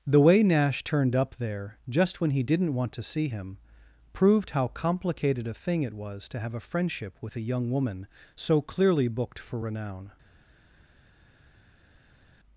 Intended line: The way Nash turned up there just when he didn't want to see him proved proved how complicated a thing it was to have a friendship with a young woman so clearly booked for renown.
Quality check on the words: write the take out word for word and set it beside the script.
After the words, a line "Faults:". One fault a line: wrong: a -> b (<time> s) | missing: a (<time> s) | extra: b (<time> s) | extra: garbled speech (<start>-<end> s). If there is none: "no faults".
The way Nash turned up there just when he didn't want to see him proved how complicated a thing it was to have a friendship with a young woman so clearly booked for renown.
Faults:
missing: proved (4.5 s)